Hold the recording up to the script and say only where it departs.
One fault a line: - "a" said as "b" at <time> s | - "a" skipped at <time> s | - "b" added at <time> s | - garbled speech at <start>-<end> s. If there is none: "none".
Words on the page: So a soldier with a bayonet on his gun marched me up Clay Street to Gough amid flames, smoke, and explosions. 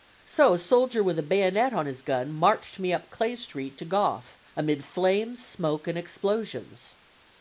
none